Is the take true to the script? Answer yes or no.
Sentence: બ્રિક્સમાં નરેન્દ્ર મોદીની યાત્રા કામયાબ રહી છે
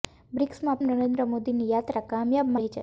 yes